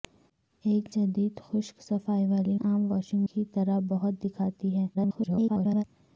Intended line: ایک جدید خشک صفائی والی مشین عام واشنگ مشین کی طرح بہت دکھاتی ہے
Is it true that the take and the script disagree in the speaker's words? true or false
true